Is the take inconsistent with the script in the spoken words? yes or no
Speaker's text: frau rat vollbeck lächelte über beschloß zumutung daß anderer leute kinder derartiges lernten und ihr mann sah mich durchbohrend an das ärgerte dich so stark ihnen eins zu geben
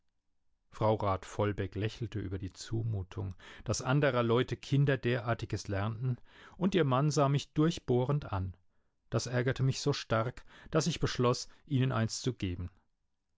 yes